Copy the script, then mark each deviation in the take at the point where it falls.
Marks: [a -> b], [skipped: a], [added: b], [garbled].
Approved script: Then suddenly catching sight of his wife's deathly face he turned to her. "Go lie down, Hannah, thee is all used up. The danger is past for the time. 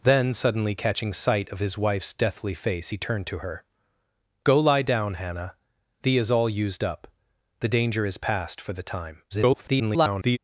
Then suddenly catching sight of his wife's deathly face he turned to her. "Go lie down, Hannah, thee is all used up. The danger is past for the time. [garbled]